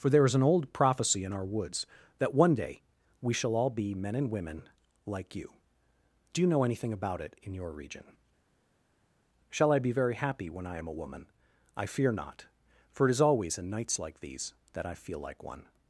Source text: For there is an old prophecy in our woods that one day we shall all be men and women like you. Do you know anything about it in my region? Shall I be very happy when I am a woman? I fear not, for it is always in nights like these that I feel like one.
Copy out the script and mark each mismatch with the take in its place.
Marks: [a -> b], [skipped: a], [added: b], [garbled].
For there is an old prophecy in our woods that one day we shall all be men and women like you. Do you know anything about it in [my -> your] region? Shall I be very happy when I am a woman? I fear not, for it is always in nights like these that I feel like one.